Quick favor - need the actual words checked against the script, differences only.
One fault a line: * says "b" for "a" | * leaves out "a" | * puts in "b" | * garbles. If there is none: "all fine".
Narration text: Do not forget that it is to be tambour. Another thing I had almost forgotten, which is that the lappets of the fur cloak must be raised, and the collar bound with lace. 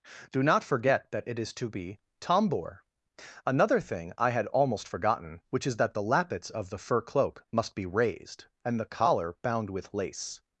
all fine